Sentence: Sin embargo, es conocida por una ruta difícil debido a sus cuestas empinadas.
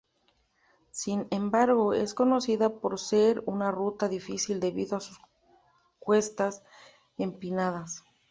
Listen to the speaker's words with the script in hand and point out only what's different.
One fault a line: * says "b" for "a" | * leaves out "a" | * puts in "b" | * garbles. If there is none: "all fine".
* puts in "ser"